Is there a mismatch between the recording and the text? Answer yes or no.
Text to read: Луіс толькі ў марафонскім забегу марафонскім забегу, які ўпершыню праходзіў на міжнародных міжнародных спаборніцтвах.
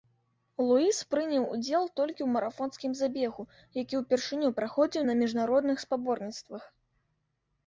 yes